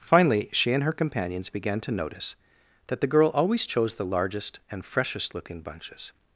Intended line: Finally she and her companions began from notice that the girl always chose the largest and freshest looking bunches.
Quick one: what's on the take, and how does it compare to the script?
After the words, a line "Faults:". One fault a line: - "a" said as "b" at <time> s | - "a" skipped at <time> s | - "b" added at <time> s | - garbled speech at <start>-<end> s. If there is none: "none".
Finally she and her companions began to notice that the girl always chose the largest and freshest looking bunches.
Faults:
- "from" said as "to" at 1.8 s